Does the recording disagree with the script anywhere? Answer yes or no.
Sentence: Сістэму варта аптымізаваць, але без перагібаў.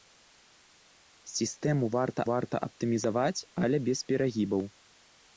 yes